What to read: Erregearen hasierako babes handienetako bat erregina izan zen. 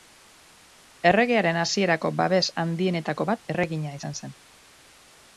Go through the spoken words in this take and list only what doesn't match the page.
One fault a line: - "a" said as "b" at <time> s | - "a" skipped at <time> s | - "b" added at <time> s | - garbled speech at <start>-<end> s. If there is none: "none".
none